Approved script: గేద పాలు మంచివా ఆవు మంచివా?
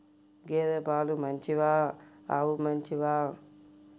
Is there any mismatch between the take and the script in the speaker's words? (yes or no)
no